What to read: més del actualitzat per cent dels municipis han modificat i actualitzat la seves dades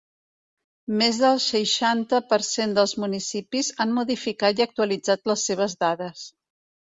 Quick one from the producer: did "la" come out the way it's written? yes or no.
no